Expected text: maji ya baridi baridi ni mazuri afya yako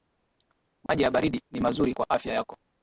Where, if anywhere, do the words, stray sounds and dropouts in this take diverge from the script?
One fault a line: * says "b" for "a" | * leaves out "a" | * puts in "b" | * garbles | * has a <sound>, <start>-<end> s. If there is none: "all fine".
* has a dropout, 0.9-0.9 s
* leaves out "baridi"
* puts in "kwa"